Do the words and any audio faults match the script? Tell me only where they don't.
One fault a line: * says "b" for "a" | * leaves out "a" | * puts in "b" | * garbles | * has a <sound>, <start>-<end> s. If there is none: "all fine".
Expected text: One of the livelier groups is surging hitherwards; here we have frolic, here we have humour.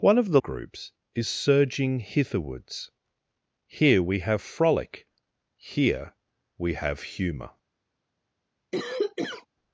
* leaves out "livelier"
* has a cough, 8.7-9.5 s